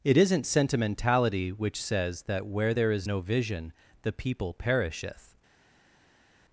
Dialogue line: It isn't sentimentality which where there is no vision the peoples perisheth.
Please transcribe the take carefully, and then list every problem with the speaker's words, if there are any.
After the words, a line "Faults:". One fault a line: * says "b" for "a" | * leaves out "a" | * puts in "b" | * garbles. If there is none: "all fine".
It isn't sentimentality which says that where there is no vision the people perisheth.
Faults:
* puts in "says that"
* says "people" for "peoples"